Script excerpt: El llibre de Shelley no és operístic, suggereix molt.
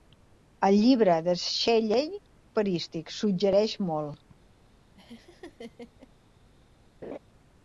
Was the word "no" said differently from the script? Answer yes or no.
yes